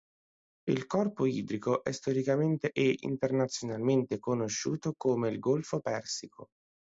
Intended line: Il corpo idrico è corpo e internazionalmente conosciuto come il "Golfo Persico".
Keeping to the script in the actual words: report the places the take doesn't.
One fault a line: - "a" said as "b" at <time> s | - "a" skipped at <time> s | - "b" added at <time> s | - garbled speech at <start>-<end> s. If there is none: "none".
- "corpo" said as "storicamente" at 1.9 s